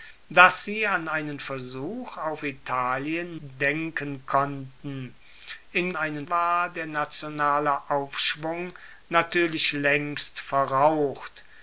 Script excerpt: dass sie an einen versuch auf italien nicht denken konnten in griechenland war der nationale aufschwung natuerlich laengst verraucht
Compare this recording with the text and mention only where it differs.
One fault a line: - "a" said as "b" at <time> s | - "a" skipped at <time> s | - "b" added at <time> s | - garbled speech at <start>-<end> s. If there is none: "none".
- "nicht" skipped at 3.4 s
- "griechenland" said as "einen" at 5.9 s